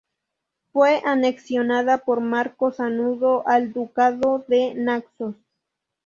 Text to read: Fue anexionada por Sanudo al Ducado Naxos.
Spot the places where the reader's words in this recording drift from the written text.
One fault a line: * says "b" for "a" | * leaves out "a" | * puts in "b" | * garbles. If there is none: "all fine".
* puts in "Marco"
* puts in "de"